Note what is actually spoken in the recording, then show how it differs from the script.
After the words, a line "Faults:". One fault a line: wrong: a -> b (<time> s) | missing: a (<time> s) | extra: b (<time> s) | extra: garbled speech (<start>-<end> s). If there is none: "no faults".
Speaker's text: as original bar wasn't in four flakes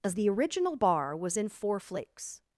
as the original bar was in four flakes
Faults:
extra: the (0.1 s)
wrong: wasn't -> was (1.2 s)